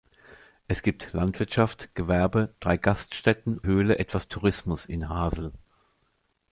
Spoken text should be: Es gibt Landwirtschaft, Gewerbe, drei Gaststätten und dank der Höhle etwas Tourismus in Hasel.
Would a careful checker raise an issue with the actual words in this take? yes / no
yes